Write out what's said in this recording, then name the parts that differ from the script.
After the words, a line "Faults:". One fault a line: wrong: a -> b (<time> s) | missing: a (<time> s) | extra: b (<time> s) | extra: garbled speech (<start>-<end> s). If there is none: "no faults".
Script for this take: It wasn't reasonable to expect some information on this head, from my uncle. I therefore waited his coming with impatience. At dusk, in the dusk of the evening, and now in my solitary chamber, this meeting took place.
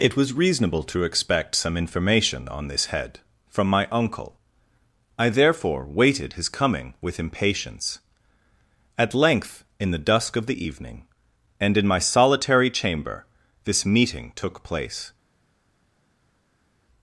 It was reasonable to expect some information on this head, from my uncle. I therefore waited his coming with impatience. At length, in the dusk of the evening, and in my solitary chamber, this meeting took place.
Faults:
wrong: wasn't -> was (0.1 s)
wrong: dusk -> length (9.1 s)
missing: now (11.8 s)